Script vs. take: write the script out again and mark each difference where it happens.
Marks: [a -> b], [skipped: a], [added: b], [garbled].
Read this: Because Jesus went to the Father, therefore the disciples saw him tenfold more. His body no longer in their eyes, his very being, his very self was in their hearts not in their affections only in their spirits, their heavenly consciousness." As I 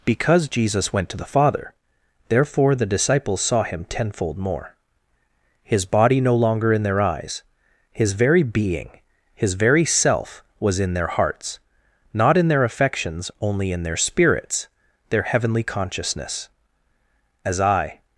Because Jesus went to the Father, therefore the disciples saw him tenfold more. His body no longer in their eyes, his very being, his very self was in their hearts not in their affections only in their spirits, their heavenly consciousness." As I